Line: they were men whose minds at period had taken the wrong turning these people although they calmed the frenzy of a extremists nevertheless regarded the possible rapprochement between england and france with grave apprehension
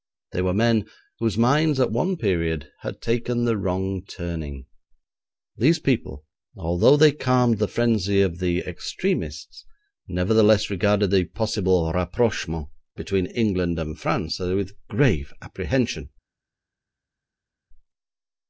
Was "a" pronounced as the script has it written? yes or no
no